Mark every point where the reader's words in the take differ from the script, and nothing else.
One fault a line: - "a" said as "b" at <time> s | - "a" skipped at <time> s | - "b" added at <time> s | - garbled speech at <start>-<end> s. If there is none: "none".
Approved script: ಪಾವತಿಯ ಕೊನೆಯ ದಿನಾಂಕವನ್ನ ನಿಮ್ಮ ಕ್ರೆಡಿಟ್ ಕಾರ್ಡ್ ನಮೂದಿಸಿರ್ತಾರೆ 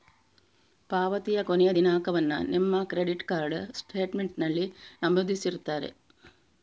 - "ಸ್ಟೇಟ್ಮೆಂಟಿನಲ್ಲಿ" added at 3.8 s